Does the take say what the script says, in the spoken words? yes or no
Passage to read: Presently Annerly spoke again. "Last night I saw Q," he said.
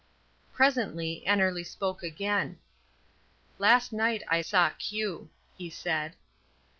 yes